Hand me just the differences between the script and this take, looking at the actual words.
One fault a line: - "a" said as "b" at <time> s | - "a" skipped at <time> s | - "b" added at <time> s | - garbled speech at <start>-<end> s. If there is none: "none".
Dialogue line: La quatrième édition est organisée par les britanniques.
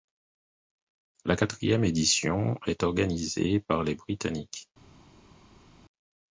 none